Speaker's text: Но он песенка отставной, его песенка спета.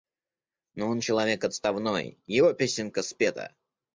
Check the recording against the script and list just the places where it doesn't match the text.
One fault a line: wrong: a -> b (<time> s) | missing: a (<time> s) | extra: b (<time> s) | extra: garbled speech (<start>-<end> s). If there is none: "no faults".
wrong: песенка -> человек (1.0 s)